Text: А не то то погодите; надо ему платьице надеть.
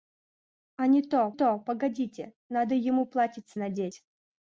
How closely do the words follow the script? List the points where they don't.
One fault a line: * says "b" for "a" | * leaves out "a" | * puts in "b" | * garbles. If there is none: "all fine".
all fine